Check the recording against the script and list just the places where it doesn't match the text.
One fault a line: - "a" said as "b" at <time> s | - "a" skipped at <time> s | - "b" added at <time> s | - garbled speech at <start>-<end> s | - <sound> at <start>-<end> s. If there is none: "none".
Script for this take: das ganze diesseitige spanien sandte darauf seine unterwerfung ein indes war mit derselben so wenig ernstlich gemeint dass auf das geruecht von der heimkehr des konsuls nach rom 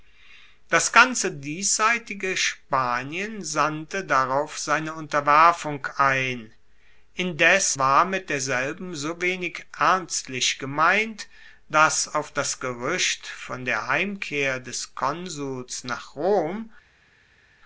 none